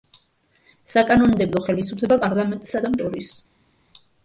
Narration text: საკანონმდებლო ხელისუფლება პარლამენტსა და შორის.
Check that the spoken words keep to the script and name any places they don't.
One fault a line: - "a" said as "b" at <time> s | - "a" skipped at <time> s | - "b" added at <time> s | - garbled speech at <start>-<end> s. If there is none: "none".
none